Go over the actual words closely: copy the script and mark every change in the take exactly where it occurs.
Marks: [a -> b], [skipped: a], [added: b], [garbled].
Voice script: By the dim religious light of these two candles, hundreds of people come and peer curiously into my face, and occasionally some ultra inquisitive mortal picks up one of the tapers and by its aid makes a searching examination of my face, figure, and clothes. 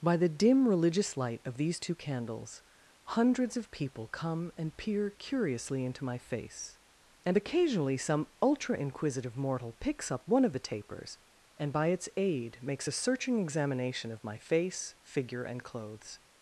By the dim religious light of these two candles, hundreds of people come and peer curiously into my face, and occasionally some ultra inquisitive mortal picks up one of the tapers and by its aid makes a searching examination of my face, figure, and clothes.